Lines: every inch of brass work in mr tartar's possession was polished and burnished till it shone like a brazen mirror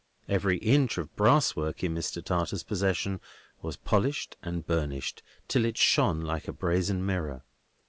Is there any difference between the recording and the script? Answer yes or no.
no